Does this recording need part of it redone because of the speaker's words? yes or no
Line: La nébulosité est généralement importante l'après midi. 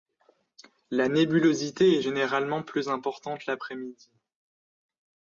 yes